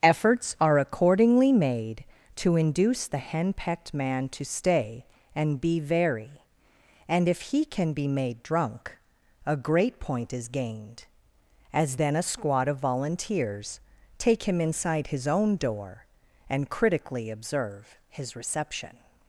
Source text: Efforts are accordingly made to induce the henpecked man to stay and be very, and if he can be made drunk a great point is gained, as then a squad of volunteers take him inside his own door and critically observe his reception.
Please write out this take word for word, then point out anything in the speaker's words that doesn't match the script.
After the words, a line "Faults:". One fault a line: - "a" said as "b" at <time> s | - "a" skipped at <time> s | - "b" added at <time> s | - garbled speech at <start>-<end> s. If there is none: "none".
Efforts are accordingly made to induce the henpecked man to stay and be very, and if he can be made drunk a great point is gained, as then a squad of volunteers take him inside his own door and critically observe his reception.
Faults:
none